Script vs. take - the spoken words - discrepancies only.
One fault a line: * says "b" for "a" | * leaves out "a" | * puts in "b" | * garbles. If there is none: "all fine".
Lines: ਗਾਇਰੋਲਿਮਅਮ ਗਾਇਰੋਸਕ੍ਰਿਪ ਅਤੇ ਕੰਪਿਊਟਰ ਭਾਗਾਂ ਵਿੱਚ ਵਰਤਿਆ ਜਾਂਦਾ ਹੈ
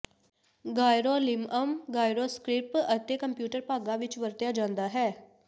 all fine